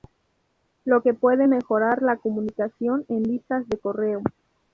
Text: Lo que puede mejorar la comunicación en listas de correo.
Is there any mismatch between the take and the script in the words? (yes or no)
no